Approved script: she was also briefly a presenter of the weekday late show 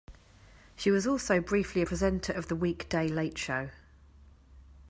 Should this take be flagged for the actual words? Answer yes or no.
no